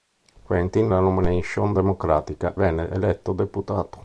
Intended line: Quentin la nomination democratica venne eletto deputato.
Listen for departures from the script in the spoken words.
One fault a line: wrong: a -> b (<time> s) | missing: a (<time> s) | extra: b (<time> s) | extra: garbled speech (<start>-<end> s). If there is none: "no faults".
no faults